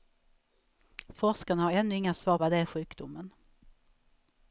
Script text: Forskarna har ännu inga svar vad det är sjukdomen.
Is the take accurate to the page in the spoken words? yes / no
yes